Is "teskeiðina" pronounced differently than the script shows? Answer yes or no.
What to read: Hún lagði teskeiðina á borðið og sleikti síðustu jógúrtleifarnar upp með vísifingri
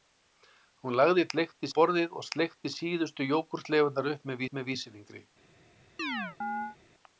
yes